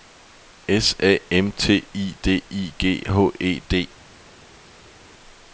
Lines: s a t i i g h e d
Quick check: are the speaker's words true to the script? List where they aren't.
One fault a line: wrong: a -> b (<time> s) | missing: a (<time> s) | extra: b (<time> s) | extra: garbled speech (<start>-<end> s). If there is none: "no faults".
extra: m (1.3 s)
extra: d (2.2 s)